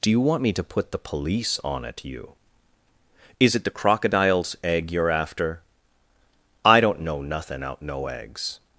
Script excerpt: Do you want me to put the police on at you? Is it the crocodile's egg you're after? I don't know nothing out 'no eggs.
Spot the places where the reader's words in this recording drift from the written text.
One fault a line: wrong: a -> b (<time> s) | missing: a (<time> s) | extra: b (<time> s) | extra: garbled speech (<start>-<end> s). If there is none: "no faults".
no faults